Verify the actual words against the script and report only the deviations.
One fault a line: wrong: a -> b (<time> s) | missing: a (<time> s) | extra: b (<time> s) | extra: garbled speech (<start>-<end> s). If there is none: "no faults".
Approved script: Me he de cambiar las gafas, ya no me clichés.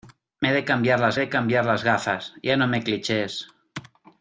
extra: de cambiar las (1.2 s)